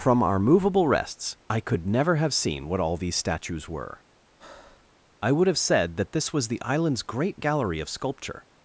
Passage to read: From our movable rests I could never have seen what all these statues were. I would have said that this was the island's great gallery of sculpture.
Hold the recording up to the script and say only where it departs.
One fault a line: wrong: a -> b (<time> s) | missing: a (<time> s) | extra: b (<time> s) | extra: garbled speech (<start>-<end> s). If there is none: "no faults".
no faults